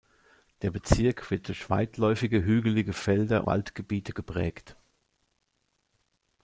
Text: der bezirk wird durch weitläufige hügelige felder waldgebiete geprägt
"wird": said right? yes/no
yes